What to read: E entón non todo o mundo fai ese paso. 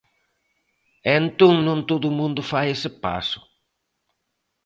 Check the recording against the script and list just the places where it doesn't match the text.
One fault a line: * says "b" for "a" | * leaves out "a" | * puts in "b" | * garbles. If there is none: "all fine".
all fine